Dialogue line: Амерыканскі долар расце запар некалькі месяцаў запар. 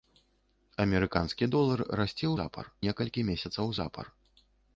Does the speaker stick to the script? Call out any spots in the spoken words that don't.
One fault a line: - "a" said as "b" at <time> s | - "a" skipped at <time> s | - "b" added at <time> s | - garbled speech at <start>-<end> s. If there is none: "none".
none